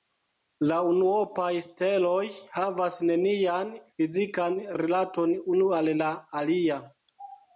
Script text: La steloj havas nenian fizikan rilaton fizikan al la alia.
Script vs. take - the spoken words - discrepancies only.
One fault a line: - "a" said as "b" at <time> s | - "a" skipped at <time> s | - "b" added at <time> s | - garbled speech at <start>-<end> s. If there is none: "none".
- "unuopaj" added at 0.9 s
- "fizikan" said as "unu" at 5.6 s